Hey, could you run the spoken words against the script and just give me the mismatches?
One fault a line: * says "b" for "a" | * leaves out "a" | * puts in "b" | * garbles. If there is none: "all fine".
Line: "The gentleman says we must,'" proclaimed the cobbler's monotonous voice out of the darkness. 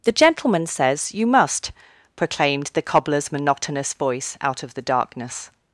* says "you" for "we"